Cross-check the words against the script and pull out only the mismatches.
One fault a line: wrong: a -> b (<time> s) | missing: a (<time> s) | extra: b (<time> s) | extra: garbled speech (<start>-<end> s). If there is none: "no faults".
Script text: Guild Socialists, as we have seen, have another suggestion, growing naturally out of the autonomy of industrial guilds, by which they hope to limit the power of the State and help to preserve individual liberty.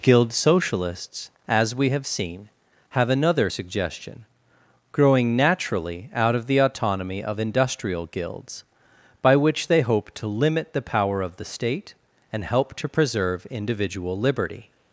no faults